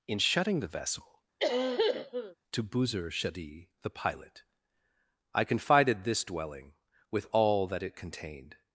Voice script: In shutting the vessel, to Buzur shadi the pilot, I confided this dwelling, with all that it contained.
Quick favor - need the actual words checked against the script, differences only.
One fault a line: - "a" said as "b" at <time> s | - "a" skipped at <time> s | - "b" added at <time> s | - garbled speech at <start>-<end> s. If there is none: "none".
none